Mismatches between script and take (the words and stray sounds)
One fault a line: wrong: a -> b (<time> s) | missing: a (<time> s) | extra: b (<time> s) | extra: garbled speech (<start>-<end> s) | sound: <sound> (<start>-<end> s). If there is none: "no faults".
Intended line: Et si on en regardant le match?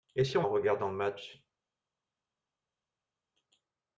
no faults